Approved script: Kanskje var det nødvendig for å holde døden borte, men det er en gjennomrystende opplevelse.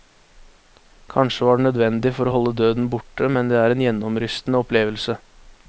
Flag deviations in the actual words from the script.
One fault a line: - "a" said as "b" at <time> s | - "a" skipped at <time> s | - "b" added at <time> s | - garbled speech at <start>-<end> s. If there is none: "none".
none